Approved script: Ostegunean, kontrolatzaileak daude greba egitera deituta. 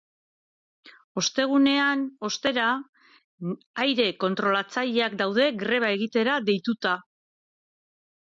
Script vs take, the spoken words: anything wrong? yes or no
yes